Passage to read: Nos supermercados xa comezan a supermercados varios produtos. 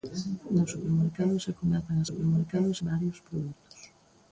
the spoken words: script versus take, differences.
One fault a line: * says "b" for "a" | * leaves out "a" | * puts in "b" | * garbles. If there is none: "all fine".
all fine